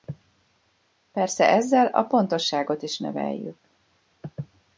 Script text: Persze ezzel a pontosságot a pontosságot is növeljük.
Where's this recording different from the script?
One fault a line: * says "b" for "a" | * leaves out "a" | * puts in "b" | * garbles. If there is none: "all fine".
* leaves out "a pontosságot"